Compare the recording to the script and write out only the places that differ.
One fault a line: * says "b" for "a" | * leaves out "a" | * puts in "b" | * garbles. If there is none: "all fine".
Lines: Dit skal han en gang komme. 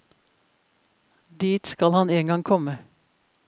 all fine